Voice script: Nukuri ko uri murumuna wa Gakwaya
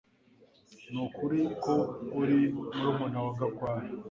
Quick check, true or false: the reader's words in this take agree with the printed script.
true